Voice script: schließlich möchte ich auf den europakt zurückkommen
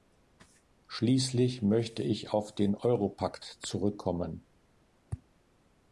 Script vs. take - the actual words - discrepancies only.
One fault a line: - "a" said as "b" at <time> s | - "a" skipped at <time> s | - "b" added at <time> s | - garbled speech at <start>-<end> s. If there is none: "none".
none